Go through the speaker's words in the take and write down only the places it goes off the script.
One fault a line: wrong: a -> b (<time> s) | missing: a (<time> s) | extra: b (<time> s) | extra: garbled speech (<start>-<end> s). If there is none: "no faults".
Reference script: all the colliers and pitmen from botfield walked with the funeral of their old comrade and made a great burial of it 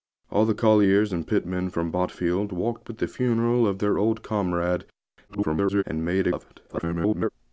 extra: garbled speech (5.3-5.8 s)
missing: great burial (6.3 s)
extra: garbled speech (6.7-7.3 s)